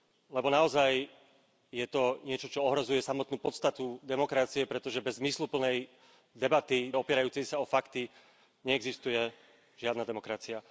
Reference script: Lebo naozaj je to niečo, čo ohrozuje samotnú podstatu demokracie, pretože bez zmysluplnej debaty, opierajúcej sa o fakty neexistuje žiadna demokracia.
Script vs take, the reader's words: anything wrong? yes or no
no